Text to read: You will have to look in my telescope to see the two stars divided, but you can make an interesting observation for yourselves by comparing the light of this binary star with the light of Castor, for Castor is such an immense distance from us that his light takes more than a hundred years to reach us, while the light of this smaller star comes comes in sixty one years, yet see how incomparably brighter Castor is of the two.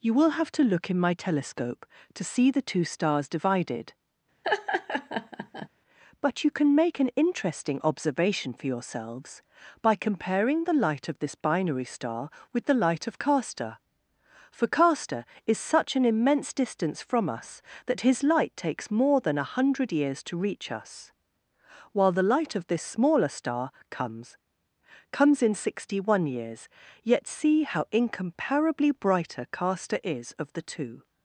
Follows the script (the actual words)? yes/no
yes